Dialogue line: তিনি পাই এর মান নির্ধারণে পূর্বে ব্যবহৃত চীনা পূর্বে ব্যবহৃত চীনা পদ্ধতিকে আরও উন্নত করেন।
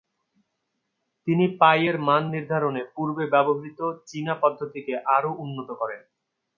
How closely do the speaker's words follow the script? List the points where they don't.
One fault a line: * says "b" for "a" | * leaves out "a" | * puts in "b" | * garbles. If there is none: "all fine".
* leaves out "পূর্বে ব্যবহৃত চীনা"